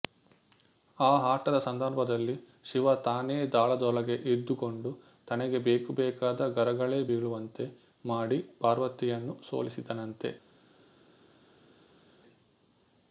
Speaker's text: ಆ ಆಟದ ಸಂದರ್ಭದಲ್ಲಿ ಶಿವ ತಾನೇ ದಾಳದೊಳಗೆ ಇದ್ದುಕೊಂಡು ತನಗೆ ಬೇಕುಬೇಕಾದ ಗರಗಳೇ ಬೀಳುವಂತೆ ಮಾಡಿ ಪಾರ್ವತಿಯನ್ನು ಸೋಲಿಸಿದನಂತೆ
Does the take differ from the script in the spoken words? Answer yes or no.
no